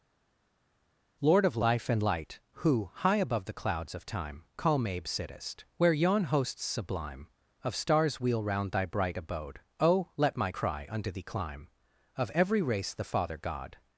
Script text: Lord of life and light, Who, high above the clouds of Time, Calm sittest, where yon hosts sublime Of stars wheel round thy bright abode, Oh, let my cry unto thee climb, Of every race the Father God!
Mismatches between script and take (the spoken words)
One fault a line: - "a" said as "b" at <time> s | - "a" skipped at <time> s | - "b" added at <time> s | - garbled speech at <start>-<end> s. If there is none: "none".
- "abe" added at 4.9 s